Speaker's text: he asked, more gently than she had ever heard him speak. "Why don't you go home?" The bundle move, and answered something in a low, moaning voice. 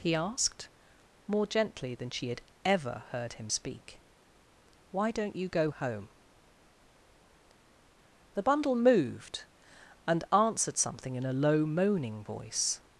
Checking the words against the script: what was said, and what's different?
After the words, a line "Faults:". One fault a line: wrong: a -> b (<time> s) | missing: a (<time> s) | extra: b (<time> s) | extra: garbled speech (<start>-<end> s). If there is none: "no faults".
he asked, more gently than she had ever heard him speak. "Why don't you go home?" The bundle moved, and answered something in a low, moaning voice.
Faults:
wrong: move -> moved (8.8 s)